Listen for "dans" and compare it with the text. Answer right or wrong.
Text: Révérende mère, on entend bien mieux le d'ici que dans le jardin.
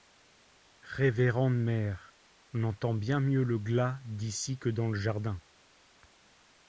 right